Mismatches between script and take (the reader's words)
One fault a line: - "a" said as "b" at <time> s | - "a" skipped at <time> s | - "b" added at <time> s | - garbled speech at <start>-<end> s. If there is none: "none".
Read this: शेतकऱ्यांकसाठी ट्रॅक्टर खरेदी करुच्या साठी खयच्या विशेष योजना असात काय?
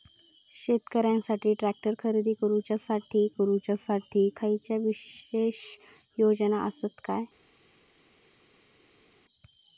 - "करुच्या साठी" added at 3.3 s